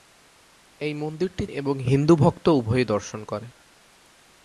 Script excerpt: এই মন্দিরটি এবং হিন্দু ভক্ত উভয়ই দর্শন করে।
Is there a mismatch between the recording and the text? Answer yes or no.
no